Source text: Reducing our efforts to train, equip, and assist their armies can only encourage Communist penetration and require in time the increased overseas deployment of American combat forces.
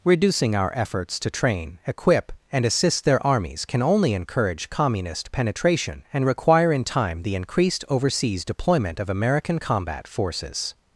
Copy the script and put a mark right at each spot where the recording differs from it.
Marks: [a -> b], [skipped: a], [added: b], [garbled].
Reducing our efforts to train, equip, and assist their armies can only encourage Communist penetration and require in time the increased overseas deployment of American combat forces.